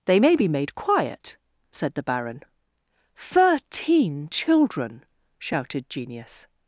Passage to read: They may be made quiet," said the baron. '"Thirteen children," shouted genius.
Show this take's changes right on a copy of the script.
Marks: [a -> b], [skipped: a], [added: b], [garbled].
They may be made quiet," said the baron. '"Thirteen children," shouted genius.